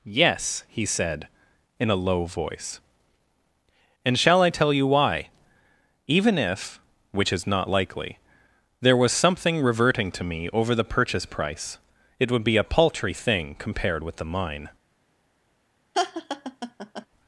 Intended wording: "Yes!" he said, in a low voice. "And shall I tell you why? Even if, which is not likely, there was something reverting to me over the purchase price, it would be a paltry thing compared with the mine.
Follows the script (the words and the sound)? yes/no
no